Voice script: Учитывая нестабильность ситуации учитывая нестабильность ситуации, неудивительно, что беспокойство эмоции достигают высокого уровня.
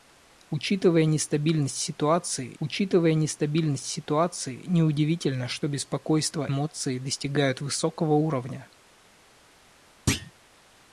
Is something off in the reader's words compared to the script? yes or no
no